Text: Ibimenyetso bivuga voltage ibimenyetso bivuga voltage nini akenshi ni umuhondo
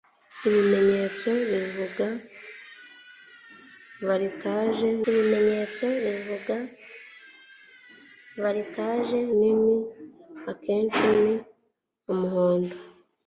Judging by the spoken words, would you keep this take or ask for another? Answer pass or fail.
pass